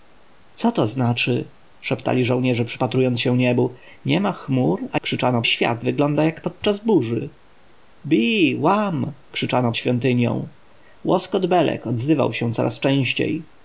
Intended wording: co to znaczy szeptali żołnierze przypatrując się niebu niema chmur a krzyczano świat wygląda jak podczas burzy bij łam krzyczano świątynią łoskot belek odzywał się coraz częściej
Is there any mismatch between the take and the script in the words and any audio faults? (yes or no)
no